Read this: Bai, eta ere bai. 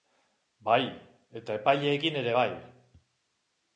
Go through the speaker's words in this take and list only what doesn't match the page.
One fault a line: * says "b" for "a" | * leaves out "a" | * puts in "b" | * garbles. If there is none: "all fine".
* puts in "epaileekin"